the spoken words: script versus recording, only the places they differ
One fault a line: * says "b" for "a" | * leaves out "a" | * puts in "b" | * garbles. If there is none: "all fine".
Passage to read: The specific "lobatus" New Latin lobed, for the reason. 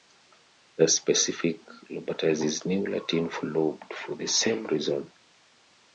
* puts in "is"
* puts in "for"
* puts in "same"